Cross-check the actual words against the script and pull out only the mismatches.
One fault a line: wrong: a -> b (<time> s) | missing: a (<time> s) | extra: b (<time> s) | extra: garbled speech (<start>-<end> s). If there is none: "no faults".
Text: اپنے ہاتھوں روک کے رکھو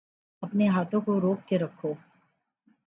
extra: کو (1.0 s)